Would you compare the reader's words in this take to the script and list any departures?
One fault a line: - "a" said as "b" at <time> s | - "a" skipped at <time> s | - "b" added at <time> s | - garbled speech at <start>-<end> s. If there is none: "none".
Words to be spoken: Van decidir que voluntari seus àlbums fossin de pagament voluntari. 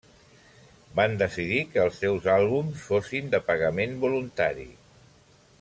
- "voluntari" said as "els" at 1.8 s